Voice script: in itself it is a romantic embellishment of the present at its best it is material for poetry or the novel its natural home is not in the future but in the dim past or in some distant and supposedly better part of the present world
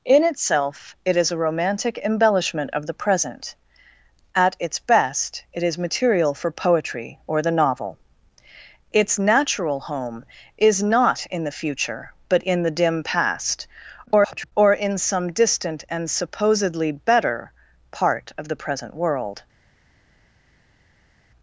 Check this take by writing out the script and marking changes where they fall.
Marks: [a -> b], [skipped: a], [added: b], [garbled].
in itself it is a romantic embellishment of the present at its best it is material for poetry or the novel its natural home is not in the future but in the dim past [garbled] or in some distant and supposedly better part of the present world